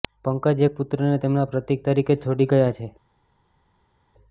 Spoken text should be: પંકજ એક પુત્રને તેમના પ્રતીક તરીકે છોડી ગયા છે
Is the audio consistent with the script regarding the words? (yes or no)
yes